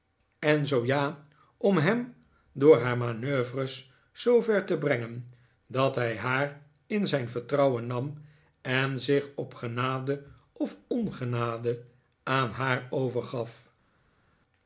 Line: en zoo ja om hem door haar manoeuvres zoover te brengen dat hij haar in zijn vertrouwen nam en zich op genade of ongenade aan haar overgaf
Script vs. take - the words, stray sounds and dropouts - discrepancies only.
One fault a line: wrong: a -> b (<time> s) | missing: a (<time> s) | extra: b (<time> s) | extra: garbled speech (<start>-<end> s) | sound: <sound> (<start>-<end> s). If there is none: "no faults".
no faults